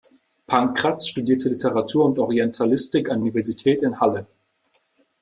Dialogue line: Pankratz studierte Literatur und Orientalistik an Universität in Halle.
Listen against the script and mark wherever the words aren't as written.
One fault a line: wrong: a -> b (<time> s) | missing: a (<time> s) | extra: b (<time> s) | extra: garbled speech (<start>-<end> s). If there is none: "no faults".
no faults